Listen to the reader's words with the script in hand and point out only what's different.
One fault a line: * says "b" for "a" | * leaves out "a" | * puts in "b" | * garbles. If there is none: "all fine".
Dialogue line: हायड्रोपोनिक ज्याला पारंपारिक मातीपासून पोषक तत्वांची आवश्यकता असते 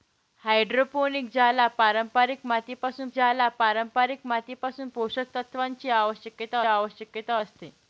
* puts in "ज्याला पारंपारिक मातीपासून"
* puts in "आवश्यकता"